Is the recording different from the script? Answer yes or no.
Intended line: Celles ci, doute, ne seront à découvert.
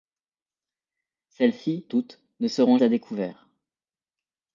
no